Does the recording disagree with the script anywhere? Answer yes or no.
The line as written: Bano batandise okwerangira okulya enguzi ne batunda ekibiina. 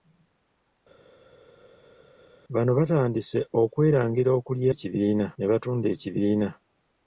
yes